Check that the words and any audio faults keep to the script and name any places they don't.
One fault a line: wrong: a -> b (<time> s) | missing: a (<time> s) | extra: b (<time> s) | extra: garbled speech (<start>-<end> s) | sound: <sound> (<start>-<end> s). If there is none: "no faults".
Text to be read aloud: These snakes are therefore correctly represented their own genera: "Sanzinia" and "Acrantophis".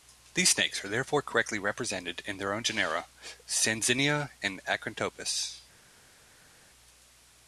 extra: in (2.2 s)